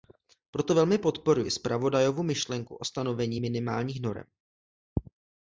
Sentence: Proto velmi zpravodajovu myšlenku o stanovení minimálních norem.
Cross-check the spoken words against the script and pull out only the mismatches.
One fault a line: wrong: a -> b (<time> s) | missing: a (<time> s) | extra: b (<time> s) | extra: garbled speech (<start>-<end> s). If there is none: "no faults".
extra: podporuji (1.0 s)